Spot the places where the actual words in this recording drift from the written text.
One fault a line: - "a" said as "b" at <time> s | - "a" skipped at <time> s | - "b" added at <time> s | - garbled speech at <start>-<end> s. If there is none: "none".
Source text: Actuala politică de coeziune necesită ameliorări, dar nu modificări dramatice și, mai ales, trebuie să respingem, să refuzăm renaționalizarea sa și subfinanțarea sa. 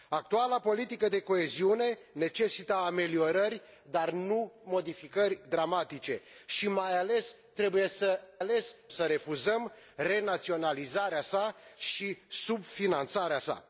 - "respingem" said as "ales" at 8.4 s